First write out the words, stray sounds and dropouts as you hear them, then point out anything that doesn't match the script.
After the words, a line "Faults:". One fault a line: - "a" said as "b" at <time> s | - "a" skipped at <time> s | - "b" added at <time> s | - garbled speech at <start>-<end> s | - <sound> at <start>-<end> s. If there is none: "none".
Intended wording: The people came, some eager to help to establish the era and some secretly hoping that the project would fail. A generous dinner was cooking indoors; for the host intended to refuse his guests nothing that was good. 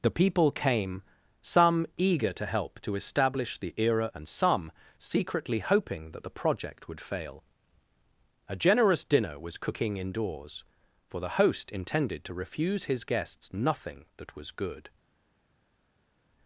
The people came, some eager to help to establish the era and some secretly hoping that the project would fail. A generous dinner was cooking indoors; for the host intended to refuse his guests nothing that was good.
Faults:
none